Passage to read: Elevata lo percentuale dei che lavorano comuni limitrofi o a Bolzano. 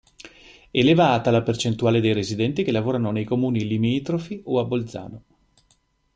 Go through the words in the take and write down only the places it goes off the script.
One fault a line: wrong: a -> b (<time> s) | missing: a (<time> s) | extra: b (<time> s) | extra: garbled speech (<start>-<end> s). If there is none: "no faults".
wrong: lo -> la (1.3 s)
extra: residenti (2.1 s)
extra: nei (3.1 s)